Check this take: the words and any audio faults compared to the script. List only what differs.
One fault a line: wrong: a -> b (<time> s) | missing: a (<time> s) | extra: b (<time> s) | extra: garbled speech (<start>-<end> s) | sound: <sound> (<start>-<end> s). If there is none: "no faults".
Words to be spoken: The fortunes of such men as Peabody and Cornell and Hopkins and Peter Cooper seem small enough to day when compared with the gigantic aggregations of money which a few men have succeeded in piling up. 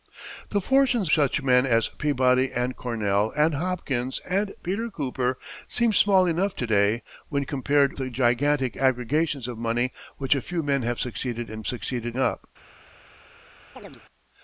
missing: of (1.1 s)
missing: with (7.9 s)
wrong: piling -> succeeded (11.6 s)
sound: chirp (13.8-14.0 s)